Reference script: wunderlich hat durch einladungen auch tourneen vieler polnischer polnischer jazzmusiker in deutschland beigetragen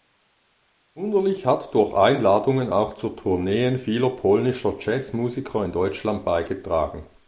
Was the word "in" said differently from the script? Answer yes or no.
no